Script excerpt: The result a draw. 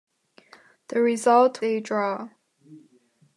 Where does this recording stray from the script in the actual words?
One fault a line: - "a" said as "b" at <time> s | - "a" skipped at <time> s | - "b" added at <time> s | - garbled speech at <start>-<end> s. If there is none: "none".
none